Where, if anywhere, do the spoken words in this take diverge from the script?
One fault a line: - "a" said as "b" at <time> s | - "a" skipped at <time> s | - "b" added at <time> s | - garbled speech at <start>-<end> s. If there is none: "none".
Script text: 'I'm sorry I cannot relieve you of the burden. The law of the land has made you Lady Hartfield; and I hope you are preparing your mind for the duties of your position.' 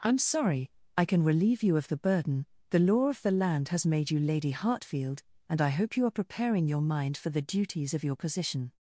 - "cannot" said as "can" at 1.1 s